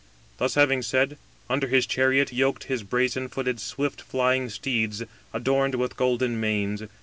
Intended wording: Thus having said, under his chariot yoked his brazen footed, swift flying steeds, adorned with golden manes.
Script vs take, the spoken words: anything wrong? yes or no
no